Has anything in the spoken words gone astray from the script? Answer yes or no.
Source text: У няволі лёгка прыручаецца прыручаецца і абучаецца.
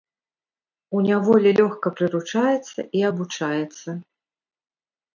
yes